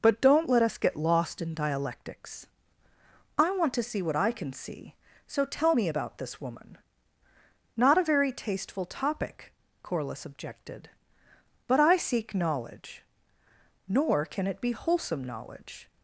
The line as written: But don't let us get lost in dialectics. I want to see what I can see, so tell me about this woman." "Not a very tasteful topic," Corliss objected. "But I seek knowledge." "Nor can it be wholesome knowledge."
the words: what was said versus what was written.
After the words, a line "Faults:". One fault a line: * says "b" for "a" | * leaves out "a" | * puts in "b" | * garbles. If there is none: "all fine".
But don't let us get lost in dialectics. I want to see what I can see, so tell me about this woman." "Not a very tasteful topic," Corliss objected. "But I seek knowledge." "Nor can it be wholesome knowledge."
Faults:
all fine